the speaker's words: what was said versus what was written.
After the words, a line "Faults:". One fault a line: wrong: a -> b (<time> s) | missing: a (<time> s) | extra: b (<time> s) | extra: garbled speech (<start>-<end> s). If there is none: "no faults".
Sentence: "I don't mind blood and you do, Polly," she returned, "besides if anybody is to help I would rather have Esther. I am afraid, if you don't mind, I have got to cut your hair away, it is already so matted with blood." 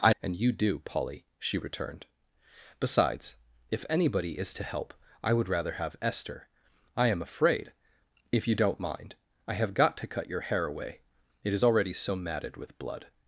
"I and you do, Polly," she returned, "besides if anybody is to help I would rather have Esther. I am afraid, if you don't mind, I have got to cut your hair away, it is already so matted with blood."
Faults:
missing: don't mind blood (0.1 s)